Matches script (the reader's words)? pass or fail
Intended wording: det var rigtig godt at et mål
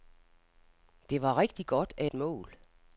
pass